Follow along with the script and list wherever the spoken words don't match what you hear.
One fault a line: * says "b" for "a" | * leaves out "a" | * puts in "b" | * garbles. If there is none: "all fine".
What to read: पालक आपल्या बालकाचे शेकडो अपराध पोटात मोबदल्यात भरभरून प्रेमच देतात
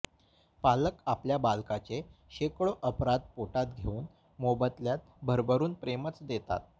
* puts in "घेऊन"